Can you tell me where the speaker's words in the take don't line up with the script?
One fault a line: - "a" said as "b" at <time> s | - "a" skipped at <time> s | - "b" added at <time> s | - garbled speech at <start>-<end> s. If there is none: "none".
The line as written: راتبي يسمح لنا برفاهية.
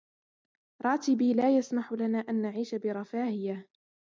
- "لا" added at 1.3 s
- "أن نعيش" added at 2.2 s